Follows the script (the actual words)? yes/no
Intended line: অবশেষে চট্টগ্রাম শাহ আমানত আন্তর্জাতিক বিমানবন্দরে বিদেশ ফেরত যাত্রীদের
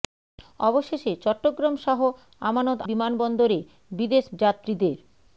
no